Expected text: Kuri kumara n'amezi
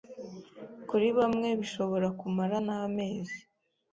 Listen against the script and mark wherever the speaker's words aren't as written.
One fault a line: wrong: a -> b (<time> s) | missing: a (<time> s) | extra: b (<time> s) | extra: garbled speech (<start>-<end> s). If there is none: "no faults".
extra: bamwe bishobora (1.2 s)